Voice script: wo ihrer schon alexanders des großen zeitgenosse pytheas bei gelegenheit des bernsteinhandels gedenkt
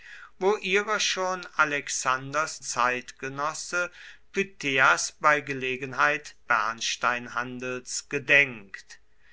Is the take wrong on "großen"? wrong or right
wrong